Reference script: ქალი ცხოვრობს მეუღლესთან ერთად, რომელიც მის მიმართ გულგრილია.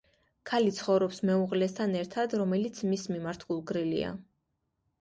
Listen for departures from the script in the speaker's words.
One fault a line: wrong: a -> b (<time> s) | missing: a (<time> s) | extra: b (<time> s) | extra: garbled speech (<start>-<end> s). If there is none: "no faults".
no faults